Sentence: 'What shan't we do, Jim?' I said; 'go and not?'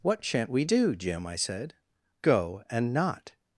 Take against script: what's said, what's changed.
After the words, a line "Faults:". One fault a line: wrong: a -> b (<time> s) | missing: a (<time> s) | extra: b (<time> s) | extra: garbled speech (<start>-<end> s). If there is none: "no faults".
'What shan't we do, Jim?' I said; 'go and not?'
Faults:
no faults